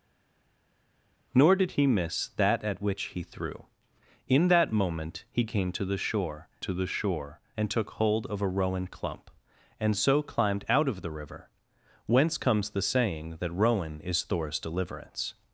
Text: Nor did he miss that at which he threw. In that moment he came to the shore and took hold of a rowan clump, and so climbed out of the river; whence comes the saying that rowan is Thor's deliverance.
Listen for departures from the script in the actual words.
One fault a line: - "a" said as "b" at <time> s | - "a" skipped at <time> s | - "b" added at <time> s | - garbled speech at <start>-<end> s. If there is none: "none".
- "to the shore" added at 6.6 s